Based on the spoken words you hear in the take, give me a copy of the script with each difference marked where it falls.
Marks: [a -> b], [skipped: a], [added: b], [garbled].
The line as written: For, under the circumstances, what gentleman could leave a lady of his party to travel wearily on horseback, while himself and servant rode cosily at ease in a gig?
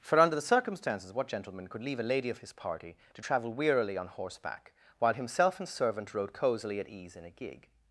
For, under the circumstances, what gentleman could leave a lady of his party to travel wearily on horseback, while himself and servant rode cosily at ease in a gig?